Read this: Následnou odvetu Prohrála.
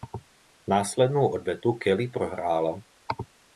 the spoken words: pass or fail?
fail